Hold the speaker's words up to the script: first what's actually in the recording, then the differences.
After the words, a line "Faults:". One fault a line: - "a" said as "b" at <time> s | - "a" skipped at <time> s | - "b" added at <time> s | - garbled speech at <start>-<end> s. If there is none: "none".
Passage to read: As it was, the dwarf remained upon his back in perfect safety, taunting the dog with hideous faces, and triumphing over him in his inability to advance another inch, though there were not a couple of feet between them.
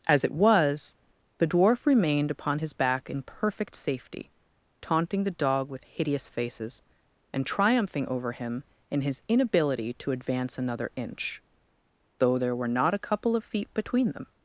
As it was, the dwarf remained upon his back in perfect safety, taunting the dog with hideous faces, and triumphing over him in his inability to advance another inch, though there were not a couple of feet between them.
Faults:
none